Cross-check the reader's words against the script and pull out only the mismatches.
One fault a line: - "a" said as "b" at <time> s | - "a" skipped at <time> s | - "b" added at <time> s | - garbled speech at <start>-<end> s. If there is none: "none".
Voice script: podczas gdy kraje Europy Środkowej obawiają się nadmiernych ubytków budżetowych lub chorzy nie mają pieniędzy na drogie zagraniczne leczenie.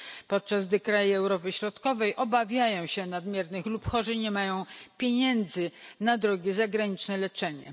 - "ubytków budżetowych" skipped at 3.7 s